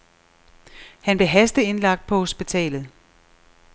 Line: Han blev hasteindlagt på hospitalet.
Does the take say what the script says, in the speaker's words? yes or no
yes